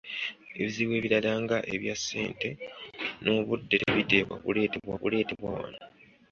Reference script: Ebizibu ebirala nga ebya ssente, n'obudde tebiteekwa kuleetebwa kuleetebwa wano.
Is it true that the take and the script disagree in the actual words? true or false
false